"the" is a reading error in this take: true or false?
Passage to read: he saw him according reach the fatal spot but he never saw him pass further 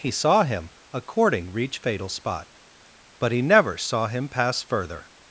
true